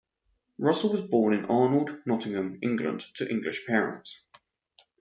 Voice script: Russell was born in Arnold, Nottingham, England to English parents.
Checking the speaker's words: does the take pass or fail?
pass